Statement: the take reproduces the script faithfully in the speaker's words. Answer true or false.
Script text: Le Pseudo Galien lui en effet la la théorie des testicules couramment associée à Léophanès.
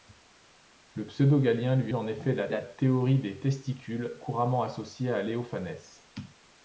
true